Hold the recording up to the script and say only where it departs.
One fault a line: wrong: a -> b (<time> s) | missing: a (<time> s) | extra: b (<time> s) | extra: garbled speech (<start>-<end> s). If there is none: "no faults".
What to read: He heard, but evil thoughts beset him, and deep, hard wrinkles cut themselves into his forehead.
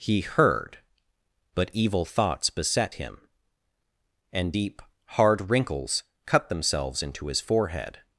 no faults